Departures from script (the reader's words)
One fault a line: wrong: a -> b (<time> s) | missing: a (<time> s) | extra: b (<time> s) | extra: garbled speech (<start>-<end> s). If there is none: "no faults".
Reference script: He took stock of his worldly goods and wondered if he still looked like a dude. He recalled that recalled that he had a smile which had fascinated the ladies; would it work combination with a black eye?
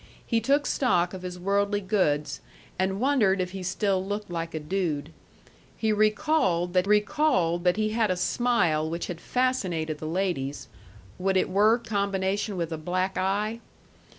no faults